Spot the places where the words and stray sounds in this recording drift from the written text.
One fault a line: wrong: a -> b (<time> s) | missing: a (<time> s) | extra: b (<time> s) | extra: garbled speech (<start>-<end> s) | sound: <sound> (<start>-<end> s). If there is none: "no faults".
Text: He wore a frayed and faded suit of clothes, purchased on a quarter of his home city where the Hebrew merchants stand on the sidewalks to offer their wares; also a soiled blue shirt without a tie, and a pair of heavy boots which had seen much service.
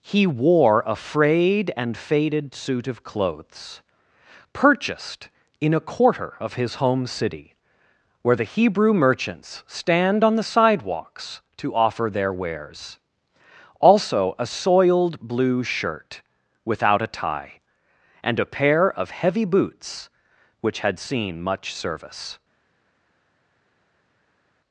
wrong: on -> in (5.6 s)